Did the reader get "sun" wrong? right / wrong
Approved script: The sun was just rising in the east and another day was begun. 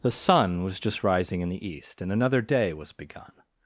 right